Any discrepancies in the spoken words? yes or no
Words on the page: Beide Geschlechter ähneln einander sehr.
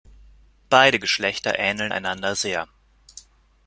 no